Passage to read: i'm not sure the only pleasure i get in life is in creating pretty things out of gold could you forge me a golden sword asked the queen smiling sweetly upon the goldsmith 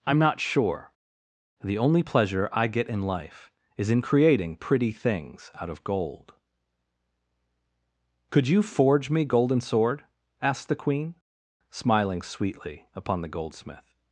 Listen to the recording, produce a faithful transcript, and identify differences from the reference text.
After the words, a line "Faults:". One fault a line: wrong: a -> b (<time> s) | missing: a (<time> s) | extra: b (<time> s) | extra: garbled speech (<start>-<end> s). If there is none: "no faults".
i'm not sure the only pleasure i get in life is in creating pretty things out of gold could you forge me golden sword asked the queen smiling sweetly upon the goldsmith
Faults:
missing: a (9.2 s)